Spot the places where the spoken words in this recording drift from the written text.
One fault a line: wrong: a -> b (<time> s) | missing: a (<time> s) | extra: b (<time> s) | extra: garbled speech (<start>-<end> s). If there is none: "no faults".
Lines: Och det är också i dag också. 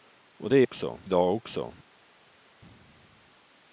no faults